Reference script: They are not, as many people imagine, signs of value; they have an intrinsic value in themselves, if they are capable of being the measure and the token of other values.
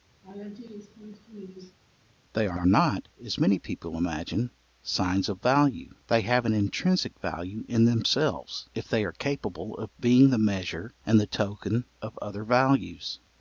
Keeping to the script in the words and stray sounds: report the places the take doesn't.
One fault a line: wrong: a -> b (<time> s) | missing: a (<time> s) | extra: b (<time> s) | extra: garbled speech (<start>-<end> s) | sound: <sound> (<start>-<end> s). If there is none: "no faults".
sound: laugh (0.2-1.8 s)
extra: are (2.5 s)